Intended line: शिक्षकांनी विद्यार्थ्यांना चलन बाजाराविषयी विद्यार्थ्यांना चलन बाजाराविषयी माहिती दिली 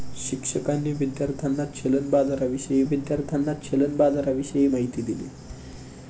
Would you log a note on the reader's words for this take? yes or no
no